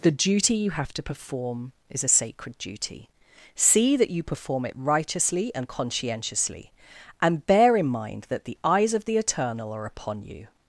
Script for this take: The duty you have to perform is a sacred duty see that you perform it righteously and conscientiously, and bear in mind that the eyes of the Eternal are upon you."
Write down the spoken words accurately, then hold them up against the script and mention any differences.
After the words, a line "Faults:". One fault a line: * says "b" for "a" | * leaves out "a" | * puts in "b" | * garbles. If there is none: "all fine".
The duty you have to perform is a sacred duty see that you perform it righteously and conscientiously, and bear in mind that the eyes of the Eternal are upon you."
Faults:
all fine